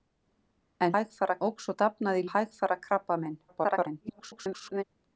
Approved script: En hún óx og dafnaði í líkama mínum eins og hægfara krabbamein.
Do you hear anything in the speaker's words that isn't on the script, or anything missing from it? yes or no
yes